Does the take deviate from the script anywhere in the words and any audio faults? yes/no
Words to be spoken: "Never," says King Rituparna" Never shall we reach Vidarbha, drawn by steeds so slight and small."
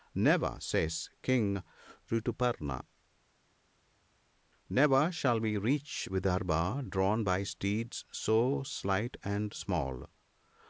no